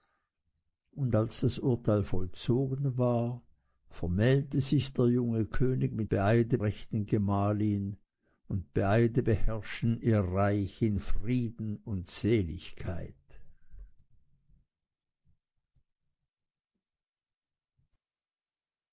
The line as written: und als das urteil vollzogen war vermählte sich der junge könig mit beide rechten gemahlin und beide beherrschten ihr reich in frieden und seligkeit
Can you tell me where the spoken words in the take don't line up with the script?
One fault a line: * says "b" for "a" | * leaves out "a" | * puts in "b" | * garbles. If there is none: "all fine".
all fine